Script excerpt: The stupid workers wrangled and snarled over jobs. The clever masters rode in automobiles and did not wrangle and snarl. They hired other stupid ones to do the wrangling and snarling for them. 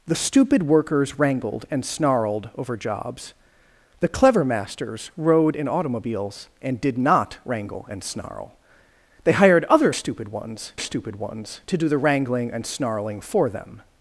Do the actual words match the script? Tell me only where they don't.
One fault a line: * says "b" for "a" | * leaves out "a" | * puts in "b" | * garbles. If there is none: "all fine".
* puts in "stupid ones"